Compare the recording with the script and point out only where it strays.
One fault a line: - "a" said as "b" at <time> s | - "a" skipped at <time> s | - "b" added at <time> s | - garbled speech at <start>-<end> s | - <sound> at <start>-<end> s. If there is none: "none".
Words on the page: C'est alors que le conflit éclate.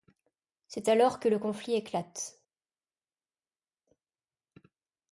none